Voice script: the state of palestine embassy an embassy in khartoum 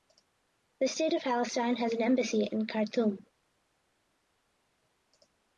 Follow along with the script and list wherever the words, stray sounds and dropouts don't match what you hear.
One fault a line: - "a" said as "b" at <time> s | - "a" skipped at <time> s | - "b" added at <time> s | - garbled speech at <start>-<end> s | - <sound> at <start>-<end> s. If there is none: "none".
- "embassy" said as "has" at 1.8 s